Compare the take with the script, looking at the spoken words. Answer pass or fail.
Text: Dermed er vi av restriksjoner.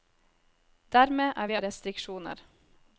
pass